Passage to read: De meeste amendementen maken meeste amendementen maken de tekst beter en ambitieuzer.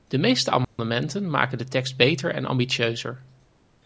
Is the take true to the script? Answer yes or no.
no